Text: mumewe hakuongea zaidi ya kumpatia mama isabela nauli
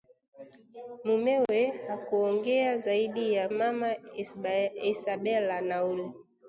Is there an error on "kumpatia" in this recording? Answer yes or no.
yes